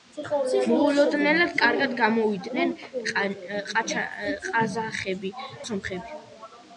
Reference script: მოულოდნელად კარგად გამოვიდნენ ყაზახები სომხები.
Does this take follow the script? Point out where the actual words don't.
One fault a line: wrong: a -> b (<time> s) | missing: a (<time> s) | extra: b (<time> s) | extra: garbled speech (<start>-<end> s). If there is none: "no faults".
no faults